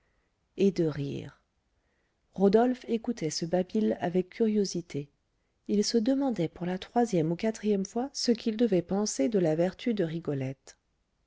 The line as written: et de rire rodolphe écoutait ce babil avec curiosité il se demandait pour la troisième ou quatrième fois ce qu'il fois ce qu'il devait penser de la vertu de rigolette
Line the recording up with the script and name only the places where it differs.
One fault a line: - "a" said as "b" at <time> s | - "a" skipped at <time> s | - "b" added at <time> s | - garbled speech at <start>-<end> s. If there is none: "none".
- "fois ce qu'il" skipped at 8.6 s